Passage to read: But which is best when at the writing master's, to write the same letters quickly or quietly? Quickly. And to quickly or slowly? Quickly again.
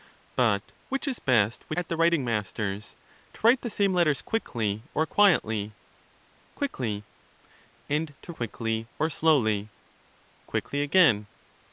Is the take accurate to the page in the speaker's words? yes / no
yes